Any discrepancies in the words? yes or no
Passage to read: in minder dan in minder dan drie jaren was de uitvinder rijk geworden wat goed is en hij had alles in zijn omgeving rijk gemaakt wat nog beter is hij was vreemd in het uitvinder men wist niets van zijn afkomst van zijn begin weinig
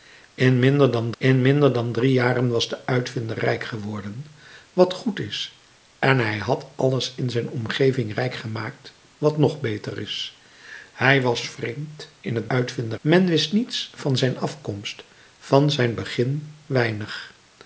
no